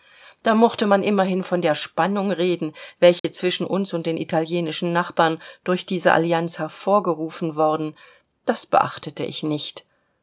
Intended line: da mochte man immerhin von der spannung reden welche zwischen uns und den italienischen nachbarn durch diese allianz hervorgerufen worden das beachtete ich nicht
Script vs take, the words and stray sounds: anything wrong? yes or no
yes